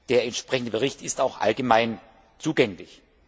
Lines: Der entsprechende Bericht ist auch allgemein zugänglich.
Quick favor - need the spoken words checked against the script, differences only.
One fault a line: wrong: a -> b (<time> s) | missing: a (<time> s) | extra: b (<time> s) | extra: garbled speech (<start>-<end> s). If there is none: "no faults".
no faults